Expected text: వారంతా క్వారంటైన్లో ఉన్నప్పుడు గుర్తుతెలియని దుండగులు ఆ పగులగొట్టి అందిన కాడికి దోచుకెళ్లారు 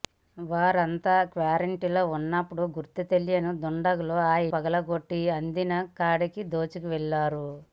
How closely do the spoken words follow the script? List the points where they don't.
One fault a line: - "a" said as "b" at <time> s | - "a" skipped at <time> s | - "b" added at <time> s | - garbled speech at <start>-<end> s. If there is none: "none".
none